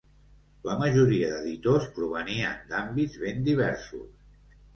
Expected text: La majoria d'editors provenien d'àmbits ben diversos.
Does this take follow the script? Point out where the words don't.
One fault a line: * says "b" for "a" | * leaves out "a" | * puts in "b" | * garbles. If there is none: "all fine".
all fine